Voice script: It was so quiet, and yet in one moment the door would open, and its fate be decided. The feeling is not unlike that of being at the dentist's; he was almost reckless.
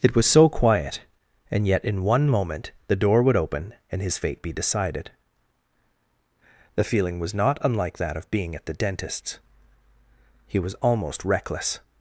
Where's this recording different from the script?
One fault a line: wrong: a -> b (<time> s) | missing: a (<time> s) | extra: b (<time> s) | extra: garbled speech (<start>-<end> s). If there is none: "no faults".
wrong: its -> his (4.0 s)
wrong: is -> was (7.2 s)